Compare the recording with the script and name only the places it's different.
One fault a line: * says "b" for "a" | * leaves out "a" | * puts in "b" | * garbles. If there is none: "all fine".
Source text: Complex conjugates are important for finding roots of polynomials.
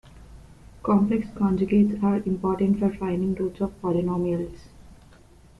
all fine